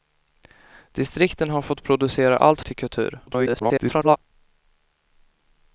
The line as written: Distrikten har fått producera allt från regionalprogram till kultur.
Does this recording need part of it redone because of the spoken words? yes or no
yes